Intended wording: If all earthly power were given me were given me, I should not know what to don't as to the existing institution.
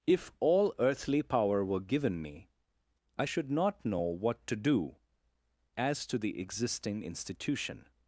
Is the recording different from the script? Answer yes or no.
yes